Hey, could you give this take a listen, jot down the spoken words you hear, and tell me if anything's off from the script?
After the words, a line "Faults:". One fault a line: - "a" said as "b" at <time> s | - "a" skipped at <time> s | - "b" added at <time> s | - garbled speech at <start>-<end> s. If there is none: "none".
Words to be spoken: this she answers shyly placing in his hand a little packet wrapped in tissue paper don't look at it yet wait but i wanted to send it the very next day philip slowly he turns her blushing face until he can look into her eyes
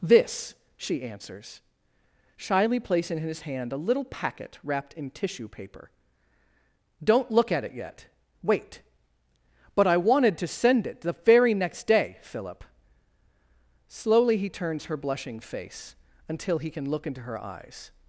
this she answers shyly placing in his hand a little packet wrapped in tissue paper don't look at it yet wait but i wanted to send it the very next day philip slowly he turns her blushing face until he can look into her eyes
Faults:
none